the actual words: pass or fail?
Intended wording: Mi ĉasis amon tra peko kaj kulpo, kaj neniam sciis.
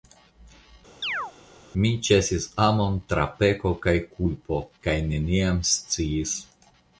pass